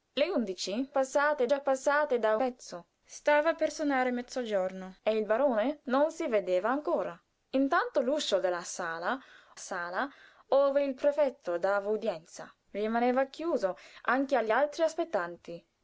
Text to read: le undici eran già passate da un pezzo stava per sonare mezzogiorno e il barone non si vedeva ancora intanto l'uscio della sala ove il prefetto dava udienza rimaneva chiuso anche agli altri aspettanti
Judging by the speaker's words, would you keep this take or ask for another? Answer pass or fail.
fail